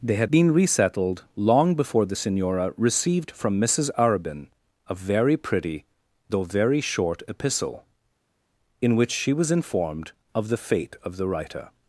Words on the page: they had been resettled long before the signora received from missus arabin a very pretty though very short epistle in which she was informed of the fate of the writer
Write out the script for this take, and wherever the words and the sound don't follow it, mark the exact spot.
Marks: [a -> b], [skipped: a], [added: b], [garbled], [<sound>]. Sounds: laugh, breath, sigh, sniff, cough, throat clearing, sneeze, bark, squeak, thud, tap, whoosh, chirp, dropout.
they had been resettled long before the signora received from missus arabin a very pretty though very short epistle in which she was informed of the fate of the writer